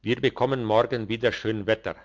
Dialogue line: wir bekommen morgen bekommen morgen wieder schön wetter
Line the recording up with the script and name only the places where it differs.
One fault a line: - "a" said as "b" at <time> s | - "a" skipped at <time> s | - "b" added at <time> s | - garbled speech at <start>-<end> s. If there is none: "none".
- "bekommen morgen" skipped at 1.1 s